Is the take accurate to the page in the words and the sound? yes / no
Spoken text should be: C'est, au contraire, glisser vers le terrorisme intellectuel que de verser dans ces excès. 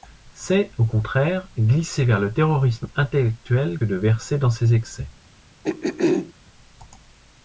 no